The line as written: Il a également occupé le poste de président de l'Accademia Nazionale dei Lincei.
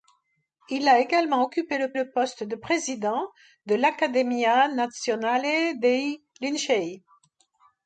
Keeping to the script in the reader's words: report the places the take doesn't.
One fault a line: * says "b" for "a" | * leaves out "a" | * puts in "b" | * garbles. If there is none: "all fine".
* puts in "le"